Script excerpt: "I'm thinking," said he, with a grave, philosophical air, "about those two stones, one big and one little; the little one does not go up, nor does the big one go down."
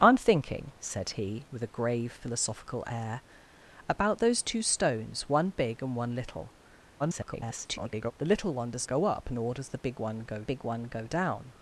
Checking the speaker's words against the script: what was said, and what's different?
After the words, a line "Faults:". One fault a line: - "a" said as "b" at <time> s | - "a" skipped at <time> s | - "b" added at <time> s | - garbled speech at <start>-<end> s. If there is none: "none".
"I'm thinking," said he, with a grave, philosophical air, "about those two stones, one big and one little; [garbled] the little one does go up, nor does the big one go big one go down."
Faults:
- garbled speech at 7.0-8.1 s
- "not" skipped at 8.9 s
- "big one go" added at 10.4 s